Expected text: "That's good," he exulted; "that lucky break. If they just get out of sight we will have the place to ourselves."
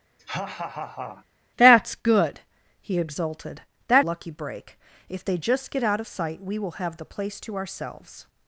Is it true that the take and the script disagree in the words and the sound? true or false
true